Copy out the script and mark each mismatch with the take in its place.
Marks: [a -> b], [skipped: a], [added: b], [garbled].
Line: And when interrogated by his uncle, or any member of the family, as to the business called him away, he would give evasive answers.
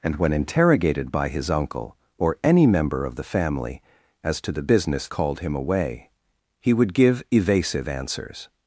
And when interrogated by his uncle, or any member of the family, as to the business called him away, he would give evasive answers.